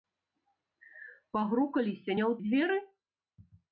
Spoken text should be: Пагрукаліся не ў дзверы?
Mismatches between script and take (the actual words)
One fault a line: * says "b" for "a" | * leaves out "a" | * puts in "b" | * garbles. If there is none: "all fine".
all fine